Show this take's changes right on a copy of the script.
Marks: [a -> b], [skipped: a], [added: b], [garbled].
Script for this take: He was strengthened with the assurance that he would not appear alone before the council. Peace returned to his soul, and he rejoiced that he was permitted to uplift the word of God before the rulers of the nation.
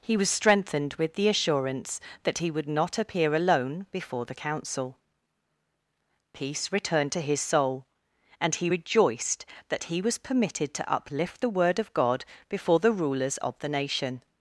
He was strengthened with the assurance that he would not appear alone before the council. Peace returned to his soul, and he rejoiced that he was permitted to uplift the word of God before the rulers of the nation.